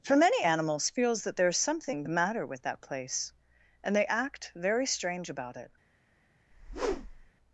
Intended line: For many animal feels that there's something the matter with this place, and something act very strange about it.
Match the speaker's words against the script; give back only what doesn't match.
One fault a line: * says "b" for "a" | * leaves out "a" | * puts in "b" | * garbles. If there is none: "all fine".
* says "animals" for "animal"
* says "that" for "this"
* says "they" for "something"